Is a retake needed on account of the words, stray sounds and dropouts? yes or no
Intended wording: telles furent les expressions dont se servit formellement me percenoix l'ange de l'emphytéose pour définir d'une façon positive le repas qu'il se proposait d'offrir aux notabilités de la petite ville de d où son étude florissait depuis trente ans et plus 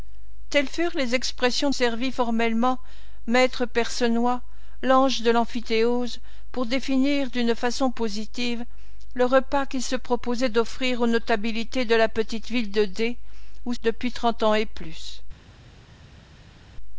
yes